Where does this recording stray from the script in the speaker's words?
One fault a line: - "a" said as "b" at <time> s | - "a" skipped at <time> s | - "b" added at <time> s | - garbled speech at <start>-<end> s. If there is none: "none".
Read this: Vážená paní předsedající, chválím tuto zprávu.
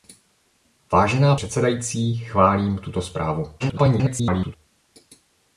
- "paní" skipped at 1.4 s
- garbled speech at 3.6-4.6 s